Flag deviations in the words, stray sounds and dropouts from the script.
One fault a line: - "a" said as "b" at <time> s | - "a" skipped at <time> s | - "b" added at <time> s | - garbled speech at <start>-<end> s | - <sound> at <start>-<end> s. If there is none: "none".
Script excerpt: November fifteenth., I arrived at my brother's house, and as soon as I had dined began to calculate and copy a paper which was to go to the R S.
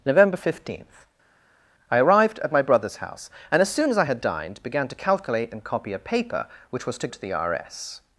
- "go" skipped at 7.1 s